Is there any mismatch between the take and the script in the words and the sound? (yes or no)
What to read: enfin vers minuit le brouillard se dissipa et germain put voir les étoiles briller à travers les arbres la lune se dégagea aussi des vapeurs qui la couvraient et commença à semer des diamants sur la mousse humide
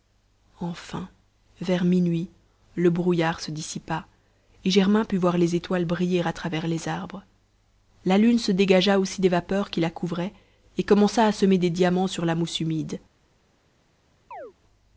yes